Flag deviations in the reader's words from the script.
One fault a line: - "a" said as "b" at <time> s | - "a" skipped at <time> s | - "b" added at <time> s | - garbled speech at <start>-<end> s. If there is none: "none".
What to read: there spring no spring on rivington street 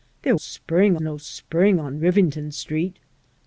none